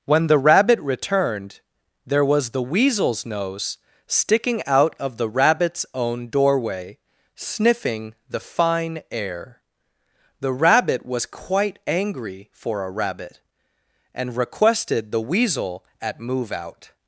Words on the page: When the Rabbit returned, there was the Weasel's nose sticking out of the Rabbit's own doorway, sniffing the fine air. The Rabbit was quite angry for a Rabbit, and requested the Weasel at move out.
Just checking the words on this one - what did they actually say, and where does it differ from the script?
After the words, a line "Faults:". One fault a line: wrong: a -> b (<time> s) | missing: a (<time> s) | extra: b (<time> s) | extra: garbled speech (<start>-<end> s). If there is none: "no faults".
When the Rabbit returned, there was the Weasel's nose sticking out of the Rabbit's own doorway, sniffing the fine air. The Rabbit was quite angry for a Rabbit, and requested the Weasel at move out.
Faults:
no faults